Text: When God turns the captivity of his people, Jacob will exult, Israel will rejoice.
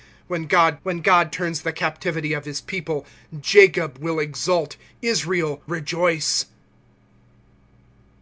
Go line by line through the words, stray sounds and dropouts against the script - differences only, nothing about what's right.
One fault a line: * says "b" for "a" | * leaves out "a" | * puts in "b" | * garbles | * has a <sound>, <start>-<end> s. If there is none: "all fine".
* puts in "when God"
* leaves out "will"